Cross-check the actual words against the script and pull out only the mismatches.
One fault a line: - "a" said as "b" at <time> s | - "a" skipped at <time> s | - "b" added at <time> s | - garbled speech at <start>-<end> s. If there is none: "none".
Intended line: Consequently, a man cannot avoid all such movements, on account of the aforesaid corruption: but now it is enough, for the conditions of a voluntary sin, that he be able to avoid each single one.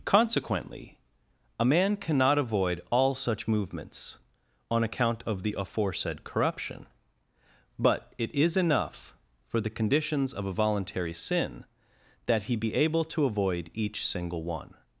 - "now" skipped at 8.1 s